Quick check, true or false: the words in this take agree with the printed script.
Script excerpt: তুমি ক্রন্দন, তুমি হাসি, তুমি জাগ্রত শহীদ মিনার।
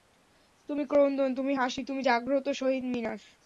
true